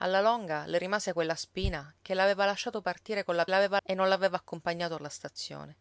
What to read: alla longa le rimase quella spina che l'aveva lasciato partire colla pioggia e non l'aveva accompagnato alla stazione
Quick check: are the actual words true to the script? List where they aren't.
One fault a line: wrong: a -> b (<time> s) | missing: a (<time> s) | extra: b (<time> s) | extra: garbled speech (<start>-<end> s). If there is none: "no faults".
wrong: pioggia -> l'aveva (3.5 s)